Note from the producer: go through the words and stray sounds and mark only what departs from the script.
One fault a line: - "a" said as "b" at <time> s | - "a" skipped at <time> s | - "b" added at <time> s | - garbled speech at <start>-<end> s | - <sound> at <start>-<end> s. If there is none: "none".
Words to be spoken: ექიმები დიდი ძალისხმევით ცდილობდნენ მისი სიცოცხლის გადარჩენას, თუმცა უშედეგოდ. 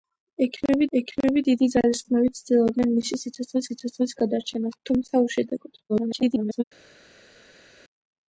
- "ექიმები" added at 1.0 s
- "სიცოცხლის" added at 3.7 s
- garbled speech at 5.9-6.6 s